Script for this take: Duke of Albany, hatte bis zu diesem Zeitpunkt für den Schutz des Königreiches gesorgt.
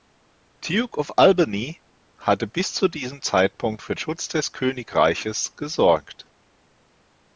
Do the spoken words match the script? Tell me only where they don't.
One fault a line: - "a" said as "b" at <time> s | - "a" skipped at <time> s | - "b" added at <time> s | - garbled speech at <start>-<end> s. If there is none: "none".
- "den" skipped at 4.0 s